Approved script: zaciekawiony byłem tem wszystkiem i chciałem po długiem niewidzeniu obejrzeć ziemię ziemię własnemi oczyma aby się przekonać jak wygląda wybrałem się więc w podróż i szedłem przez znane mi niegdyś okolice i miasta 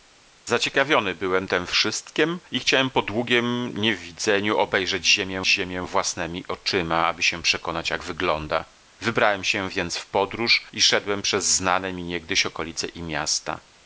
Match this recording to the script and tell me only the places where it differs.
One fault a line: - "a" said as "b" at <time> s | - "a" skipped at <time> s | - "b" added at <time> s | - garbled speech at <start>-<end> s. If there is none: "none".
none